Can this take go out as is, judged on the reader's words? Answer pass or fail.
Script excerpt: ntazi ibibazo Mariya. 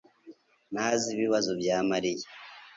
fail